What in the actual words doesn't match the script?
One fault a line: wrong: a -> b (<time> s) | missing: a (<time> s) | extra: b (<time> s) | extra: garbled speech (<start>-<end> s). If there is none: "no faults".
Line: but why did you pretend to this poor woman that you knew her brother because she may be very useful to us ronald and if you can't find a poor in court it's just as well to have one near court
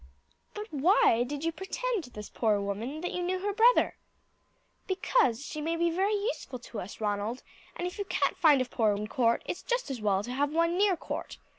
no faults